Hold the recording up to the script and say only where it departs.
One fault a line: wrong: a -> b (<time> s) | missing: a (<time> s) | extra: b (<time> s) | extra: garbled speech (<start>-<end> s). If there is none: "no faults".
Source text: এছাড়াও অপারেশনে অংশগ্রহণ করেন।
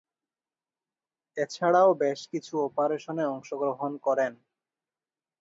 extra: বেশ কিছু (2.0 s)